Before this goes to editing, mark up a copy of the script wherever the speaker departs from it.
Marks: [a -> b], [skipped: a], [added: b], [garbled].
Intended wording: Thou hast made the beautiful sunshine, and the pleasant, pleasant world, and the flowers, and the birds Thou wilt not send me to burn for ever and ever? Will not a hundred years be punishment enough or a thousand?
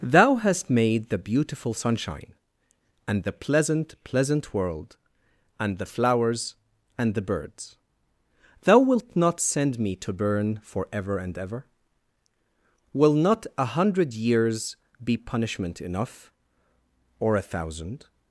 Thou hast made the beautiful sunshine, and the pleasant, pleasant world, and the flowers, and the birds Thou wilt not send me to burn for ever and ever? Will not a hundred years be punishment enough or a thousand?